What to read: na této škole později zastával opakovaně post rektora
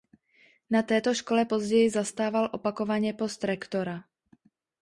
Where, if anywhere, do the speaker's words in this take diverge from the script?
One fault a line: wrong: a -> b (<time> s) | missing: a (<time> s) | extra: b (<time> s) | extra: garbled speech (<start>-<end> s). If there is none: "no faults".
no faults